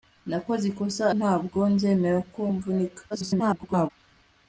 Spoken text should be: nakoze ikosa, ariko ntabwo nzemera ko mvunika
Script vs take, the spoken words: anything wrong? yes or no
yes